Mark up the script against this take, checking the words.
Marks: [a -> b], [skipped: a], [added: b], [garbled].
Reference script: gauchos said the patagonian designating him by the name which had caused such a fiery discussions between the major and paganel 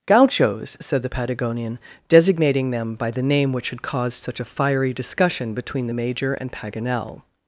gauchos said the patagonian designating [him -> them] by the name which had caused such a fiery [discussions -> discussion] between the major and paganel